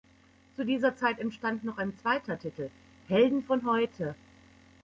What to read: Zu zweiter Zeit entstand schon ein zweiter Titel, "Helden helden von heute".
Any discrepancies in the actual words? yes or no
yes